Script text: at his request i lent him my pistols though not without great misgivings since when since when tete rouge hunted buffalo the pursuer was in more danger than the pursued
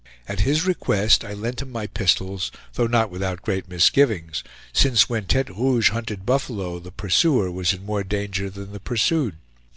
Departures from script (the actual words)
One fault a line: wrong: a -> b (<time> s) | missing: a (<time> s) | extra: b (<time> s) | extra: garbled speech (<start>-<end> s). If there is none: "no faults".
missing: since when (5.3 s)